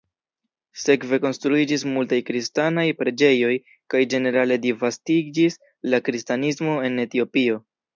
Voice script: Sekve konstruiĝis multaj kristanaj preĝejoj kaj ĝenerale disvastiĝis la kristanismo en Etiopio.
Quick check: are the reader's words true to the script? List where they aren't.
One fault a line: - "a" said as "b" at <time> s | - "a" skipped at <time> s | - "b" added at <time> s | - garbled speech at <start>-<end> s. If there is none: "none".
none